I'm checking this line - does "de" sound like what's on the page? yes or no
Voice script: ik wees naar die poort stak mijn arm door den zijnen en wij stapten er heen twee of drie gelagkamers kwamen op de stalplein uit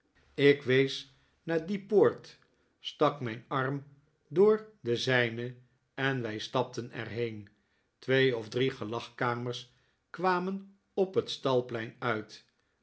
no